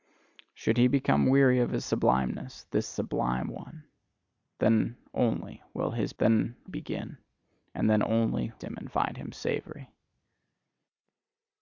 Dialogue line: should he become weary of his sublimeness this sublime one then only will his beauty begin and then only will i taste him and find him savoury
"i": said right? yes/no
no